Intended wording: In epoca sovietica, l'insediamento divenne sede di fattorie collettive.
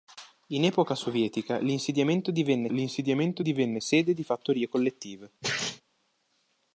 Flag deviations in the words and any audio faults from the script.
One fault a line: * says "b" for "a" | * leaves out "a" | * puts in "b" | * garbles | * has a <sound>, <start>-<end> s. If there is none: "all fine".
* puts in "l'insediamento divenne"
* has a sneeze, 5.4-5.8 s